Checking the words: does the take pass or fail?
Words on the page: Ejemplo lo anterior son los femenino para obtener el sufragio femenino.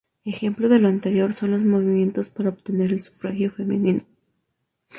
fail